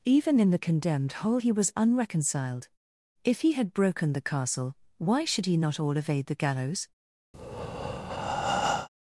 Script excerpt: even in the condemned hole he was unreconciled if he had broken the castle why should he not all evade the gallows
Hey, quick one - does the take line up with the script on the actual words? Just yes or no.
yes